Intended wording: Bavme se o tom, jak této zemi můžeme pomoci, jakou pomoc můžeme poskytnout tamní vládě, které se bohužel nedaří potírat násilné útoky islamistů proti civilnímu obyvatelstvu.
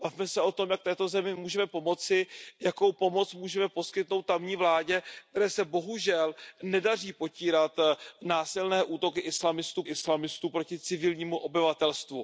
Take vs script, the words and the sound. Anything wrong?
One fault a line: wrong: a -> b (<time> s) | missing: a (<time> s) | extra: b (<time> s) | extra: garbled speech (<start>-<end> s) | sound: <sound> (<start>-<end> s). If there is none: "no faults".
extra: islamistů (9.8 s)